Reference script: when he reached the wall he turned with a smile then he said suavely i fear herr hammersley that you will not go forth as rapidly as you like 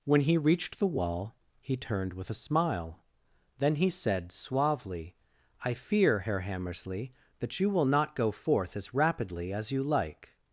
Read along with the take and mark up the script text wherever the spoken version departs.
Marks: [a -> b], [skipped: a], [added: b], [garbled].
when he reached the wall he turned with a smile then he said suavely i fear herr hammersley that you will not go forth as rapidly as you like